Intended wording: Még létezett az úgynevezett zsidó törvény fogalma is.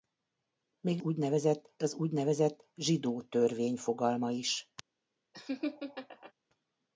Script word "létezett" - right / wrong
wrong